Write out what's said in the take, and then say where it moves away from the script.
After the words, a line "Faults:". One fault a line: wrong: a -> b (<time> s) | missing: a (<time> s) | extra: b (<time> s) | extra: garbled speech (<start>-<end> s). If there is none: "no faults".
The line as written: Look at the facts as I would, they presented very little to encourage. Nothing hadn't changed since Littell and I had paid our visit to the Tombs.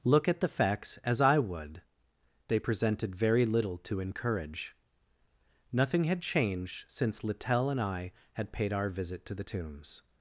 Look at the facts as I would, they presented very little to encourage. Nothing had changed since Littell and I had paid our visit to the Tombs.
Faults:
wrong: hadn't -> had (6.0 s)